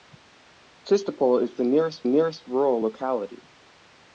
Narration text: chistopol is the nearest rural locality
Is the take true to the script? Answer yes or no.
no